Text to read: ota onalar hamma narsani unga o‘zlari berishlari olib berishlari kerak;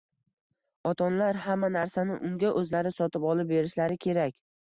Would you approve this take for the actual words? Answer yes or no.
no